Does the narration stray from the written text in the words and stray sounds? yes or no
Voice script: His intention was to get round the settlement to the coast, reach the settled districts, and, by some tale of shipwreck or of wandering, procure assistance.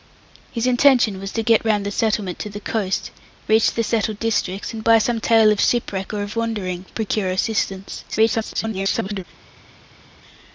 yes